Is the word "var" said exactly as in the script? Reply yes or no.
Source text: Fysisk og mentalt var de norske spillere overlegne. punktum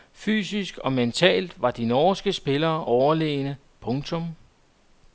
yes